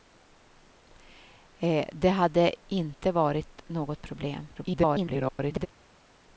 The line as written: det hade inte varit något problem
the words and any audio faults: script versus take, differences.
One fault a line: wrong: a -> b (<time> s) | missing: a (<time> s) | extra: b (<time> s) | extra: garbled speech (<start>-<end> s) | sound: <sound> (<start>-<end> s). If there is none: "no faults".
extra: garbled speech (4.5-5.7 s)